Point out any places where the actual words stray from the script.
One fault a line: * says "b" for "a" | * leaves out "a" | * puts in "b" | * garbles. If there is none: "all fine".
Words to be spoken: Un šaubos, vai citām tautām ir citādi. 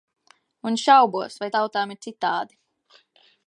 * leaves out "citām"